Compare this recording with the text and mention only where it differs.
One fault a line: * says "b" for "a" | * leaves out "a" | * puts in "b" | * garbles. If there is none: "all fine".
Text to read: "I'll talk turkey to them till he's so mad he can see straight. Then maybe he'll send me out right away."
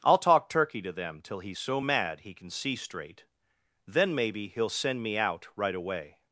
all fine